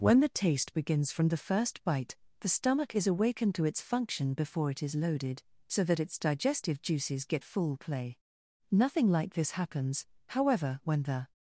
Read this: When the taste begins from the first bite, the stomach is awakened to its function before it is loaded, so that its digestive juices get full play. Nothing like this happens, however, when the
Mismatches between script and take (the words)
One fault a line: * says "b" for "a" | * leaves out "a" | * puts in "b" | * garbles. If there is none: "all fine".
all fine